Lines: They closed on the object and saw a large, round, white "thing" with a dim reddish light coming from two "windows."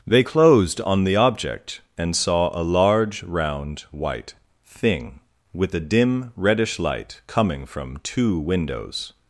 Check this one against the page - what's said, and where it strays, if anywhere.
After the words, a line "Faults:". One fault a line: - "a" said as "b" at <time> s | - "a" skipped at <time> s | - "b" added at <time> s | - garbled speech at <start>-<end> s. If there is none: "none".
They closed on the object and saw a large, round, white "thing" with a dim reddish light coming from two "windows."
Faults:
none